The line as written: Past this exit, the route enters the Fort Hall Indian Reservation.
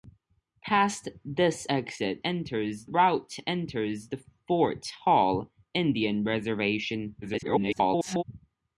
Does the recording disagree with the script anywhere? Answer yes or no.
yes